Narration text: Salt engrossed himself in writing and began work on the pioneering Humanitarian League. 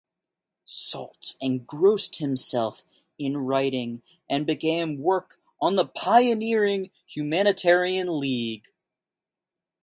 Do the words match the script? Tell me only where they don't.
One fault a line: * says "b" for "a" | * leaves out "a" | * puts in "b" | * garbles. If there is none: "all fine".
all fine